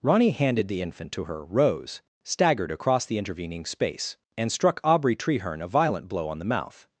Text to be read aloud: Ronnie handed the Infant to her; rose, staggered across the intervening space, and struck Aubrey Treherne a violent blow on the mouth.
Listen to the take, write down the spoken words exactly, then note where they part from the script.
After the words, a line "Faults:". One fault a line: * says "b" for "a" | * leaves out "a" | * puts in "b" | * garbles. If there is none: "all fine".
Ronnie handed the Infant to her; rose, staggered across the intervening space, and struck Aubrey Treherne a violent blow on the mouth.
Faults:
all fine